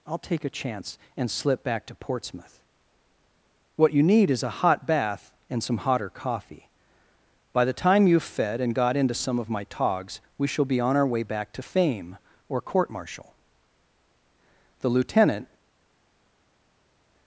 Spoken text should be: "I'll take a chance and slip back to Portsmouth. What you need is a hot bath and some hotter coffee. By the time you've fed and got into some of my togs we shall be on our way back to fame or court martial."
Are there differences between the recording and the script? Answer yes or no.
yes